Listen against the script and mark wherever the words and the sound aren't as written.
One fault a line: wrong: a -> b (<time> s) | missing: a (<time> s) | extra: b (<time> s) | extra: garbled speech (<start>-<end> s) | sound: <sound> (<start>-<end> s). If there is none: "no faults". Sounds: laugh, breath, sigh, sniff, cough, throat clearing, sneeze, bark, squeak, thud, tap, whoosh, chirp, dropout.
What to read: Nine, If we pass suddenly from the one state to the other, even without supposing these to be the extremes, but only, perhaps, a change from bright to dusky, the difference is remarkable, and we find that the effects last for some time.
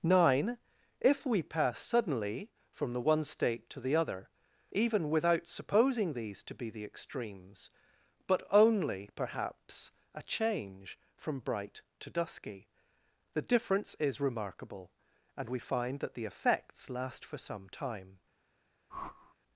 sound: whoosh (18.9-19.4 s)